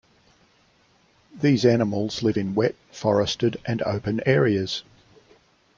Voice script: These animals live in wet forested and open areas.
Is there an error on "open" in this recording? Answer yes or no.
no